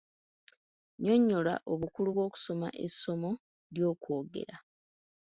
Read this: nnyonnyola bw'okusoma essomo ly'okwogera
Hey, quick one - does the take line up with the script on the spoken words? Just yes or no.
no